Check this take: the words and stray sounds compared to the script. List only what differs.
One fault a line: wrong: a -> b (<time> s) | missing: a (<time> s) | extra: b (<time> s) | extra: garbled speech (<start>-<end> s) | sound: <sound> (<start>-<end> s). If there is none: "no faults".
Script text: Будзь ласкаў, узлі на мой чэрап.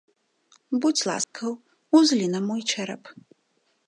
sound: dropout (1.2-1.3 s)